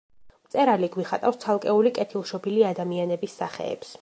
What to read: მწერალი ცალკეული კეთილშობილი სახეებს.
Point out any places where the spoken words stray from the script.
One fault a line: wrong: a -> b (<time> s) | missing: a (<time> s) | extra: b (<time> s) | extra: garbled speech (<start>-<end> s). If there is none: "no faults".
extra: გვიხატავს (0.9 s)
extra: ადამიანების (2.8 s)